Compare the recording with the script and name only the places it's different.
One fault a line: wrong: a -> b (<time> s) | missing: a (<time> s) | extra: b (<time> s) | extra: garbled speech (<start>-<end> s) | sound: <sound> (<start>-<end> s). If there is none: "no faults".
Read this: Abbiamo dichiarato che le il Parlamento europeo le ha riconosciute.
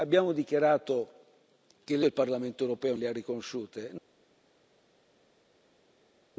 no faults